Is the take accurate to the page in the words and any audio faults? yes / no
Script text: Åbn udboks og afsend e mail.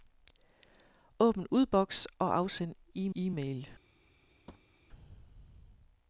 no